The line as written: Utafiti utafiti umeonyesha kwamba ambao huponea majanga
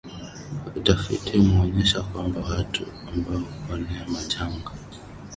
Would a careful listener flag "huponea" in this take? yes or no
no